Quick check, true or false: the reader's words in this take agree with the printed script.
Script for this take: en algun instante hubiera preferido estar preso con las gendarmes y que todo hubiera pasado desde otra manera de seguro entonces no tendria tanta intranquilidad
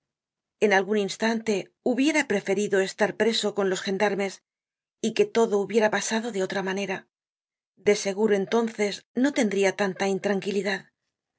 false